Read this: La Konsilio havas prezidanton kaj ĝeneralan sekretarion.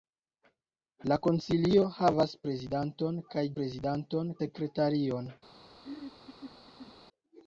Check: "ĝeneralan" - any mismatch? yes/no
yes